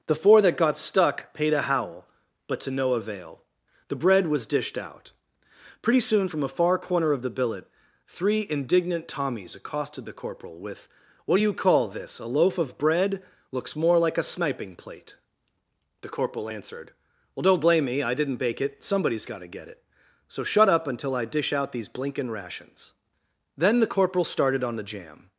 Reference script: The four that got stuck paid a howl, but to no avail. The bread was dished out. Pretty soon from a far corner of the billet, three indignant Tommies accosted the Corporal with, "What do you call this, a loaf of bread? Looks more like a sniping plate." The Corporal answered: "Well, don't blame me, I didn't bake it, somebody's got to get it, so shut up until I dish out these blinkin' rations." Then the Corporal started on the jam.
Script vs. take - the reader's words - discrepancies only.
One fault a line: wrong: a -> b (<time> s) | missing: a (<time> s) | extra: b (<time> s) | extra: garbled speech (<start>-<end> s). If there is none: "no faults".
no faults